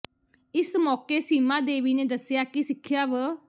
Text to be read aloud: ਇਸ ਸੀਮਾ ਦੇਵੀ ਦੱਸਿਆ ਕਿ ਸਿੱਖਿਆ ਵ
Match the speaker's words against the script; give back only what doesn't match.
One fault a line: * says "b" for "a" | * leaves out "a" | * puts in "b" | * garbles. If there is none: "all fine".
* puts in "ਮੌਕੇ"
* puts in "ਨੇ"